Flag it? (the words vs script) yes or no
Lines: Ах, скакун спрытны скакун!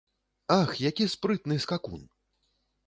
yes